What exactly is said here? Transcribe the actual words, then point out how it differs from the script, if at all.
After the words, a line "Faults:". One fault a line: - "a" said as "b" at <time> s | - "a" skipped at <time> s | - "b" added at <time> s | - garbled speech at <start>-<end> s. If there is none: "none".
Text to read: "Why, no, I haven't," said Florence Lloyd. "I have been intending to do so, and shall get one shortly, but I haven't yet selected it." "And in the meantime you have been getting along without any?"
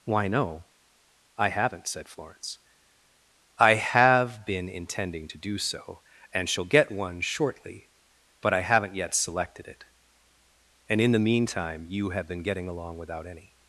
"Why, no, I haven't," said Florence. "I have been intending to do so, and shall get one shortly, but I haven't yet selected it." "And in the meantime you have been getting along without any?"
Faults:
- "Lloyd" skipped at 2.6 s